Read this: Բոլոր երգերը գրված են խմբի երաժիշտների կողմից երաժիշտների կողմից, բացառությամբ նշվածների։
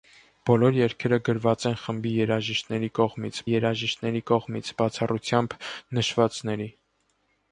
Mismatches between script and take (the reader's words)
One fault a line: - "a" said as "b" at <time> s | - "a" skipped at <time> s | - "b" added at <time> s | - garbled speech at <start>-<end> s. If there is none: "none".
none